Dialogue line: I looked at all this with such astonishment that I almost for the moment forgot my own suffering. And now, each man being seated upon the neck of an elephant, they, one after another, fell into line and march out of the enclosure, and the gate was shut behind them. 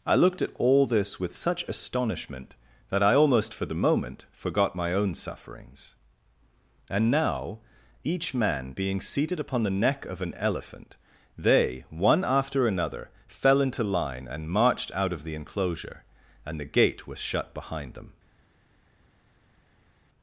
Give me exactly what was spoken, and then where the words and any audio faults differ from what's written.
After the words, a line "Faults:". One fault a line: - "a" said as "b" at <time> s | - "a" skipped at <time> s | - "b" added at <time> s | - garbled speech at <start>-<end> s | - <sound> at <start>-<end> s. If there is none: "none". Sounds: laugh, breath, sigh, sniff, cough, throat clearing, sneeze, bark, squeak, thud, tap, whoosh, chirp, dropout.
I looked at all this with such astonishment that I almost for the moment forgot my own sufferings. And now, each man being seated upon the neck of an elephant, they, one after another, fell into line and marched out of the enclosure, and the gate was shut behind them.
Faults:
- "suffering" said as "sufferings" at 5.1 s
- "march" said as "marched" at 14.5 s